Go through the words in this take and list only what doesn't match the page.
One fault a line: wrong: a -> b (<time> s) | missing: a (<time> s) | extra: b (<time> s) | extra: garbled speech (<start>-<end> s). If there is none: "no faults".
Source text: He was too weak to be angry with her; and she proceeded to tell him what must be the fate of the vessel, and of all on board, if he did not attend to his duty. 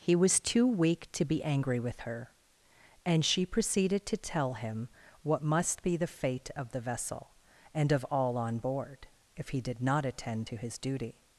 no faults